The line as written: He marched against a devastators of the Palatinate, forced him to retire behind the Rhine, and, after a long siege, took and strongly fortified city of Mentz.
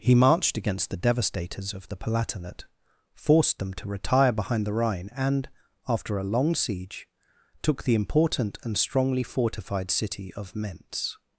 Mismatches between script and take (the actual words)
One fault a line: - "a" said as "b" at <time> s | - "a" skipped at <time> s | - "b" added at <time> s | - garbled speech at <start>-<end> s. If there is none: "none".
- "a" said as "the" at 0.9 s
- "him" said as "them" at 3.6 s
- "the important" added at 7.8 s